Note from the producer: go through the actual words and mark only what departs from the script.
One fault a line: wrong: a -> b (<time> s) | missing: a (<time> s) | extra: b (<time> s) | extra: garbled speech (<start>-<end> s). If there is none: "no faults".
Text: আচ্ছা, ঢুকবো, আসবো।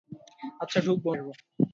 no faults